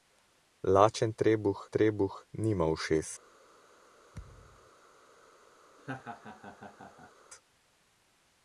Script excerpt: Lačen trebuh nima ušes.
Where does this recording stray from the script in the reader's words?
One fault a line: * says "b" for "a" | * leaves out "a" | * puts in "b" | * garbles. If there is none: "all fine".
* puts in "trebuh"